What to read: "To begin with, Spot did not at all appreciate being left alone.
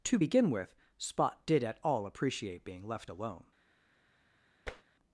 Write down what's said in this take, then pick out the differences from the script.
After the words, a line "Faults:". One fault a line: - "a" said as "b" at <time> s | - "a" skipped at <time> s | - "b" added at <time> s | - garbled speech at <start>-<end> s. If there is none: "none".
"To begin with, Spot did at all appreciate being left alone.
Faults:
- "not" skipped at 1.6 s